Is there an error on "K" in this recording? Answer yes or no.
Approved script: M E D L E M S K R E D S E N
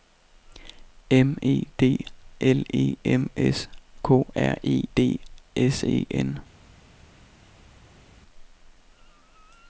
no